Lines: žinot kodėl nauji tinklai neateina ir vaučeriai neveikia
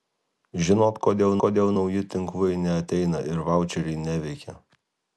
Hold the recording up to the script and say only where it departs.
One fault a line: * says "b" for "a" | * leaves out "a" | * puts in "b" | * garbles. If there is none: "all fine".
* puts in "kodėl"